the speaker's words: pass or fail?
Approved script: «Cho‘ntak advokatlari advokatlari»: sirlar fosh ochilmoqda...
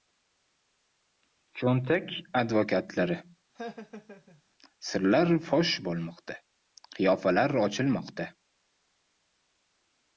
fail